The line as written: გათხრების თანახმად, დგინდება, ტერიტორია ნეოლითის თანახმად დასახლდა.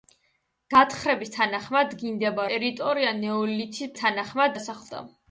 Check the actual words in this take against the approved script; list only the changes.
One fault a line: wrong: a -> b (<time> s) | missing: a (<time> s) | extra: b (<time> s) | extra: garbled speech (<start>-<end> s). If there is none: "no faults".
no faults